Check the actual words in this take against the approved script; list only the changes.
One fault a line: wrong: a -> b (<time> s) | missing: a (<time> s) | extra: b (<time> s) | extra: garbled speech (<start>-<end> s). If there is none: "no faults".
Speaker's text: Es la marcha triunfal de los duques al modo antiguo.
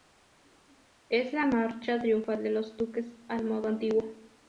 no faults